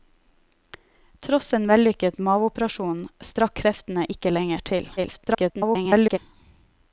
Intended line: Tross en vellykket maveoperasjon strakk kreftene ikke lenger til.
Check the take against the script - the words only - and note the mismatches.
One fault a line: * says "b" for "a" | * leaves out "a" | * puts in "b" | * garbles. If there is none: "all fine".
* garbles